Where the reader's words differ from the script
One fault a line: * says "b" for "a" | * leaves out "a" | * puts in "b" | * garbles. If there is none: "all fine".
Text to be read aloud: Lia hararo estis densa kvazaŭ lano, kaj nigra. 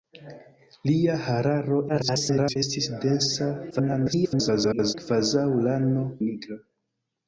* garbles
* garbles
* leaves out "kaj"